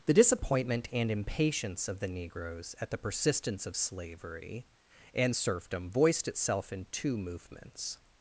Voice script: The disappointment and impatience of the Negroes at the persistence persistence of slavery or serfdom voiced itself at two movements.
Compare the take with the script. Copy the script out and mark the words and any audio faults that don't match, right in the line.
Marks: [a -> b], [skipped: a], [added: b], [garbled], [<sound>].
The disappointment and impatience of the Negroes at the persistence [skipped: persistence] of slavery [or -> and] serfdom voiced itself [at -> in] two movements.